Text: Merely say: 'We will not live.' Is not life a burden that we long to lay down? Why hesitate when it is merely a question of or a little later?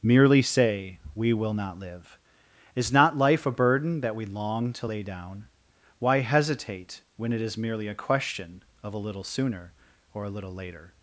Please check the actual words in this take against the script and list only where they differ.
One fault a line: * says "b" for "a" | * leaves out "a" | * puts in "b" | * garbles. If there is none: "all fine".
* puts in "a little sooner"